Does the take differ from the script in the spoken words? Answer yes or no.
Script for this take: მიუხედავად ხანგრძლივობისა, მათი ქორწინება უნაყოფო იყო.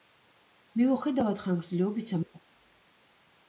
yes